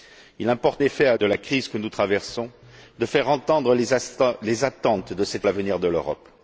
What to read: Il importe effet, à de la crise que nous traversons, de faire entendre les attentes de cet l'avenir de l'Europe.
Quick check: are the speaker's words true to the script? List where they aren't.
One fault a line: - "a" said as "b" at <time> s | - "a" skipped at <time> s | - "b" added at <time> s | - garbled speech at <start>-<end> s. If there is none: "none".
none